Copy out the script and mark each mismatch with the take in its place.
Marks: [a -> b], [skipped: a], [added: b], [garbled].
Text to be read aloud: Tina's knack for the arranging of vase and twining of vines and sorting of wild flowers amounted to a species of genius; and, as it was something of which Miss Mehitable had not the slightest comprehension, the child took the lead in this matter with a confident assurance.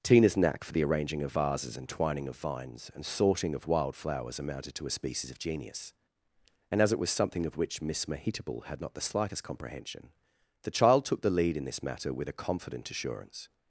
Tina's knack for the arranging of [vase -> vases] and twining of vines and sorting of wild flowers amounted to a species of genius; and, as it was something of which Miss Mehitable had not the slightest comprehension, the child took the lead in this matter with a confident assurance.